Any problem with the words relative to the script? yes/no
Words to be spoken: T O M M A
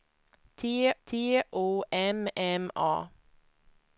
yes